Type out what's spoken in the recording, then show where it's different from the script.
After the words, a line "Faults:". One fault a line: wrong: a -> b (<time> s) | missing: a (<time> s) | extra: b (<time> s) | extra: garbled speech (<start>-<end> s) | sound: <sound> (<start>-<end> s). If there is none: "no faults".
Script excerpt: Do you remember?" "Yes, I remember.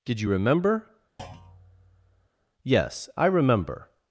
Did you remember?" "Yes, I remember.
Faults:
wrong: Do -> Did (0.0 s)
sound: thud (1.2-2.3 s)